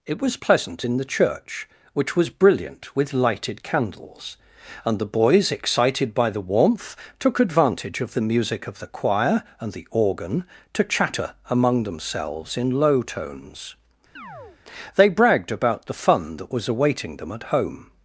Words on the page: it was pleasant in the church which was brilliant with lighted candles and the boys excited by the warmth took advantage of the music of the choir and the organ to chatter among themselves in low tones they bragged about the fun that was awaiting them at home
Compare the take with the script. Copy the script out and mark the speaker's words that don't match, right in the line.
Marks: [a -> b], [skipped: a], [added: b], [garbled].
it was pleasant in the church which was brilliant with lighted candles and the boys excited by the warmth took advantage of the music of the choir and the organ to chatter among themselves in low tones they bragged about the fun that was awaiting them at home